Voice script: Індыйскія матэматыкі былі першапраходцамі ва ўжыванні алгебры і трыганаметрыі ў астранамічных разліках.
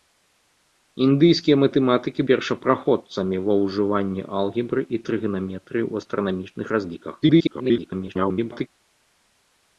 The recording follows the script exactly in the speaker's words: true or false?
false